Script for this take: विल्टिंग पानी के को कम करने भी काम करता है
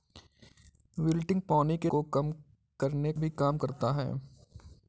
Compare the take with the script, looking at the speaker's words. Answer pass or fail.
pass